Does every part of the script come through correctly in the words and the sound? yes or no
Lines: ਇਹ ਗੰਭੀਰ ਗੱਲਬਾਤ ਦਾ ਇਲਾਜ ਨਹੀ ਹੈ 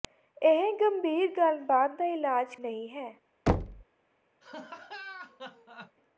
no